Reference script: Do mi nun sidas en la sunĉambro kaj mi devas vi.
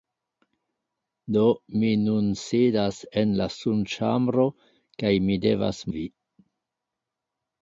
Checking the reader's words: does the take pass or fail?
pass